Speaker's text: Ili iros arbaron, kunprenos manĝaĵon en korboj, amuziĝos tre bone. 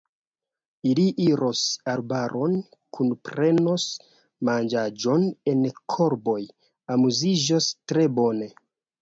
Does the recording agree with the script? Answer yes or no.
yes